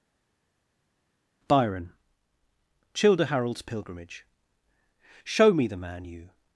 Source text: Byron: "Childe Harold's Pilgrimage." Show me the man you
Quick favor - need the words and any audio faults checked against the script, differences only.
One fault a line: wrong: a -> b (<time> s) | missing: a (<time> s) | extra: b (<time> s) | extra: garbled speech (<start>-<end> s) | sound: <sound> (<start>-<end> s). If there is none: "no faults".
no faults